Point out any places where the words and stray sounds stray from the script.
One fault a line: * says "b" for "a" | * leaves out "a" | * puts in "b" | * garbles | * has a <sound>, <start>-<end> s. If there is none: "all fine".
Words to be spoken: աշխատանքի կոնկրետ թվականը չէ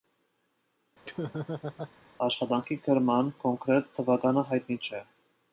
* has a laugh, 1.0-1.9 s
* puts in "գրման"
* puts in "հայտնի"